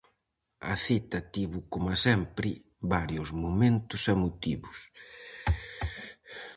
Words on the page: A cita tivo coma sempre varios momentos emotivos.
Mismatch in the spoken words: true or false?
false